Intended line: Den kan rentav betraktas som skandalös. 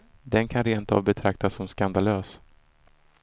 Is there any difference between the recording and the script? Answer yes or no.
no